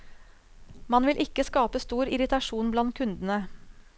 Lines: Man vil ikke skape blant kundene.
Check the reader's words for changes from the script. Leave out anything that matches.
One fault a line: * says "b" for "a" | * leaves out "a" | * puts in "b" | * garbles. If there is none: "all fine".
* puts in "stor irritasjon"